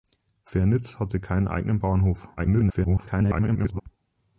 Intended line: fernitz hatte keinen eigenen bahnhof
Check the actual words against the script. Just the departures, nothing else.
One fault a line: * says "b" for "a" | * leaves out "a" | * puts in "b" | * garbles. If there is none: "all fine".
* garbles